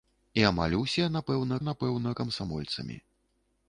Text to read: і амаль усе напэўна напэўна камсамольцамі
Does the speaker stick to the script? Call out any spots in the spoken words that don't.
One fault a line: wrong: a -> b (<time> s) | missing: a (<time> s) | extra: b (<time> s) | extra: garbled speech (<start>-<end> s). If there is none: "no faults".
no faults